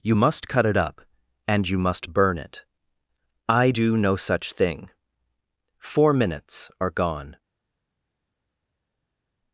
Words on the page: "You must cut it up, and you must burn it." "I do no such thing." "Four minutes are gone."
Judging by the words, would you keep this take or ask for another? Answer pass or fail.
pass